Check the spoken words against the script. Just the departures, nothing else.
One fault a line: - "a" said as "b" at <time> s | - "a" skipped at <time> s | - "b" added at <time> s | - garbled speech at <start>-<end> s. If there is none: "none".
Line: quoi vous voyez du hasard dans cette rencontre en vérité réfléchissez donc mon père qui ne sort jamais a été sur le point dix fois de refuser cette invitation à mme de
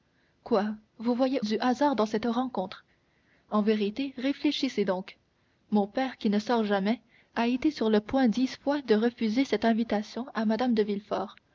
none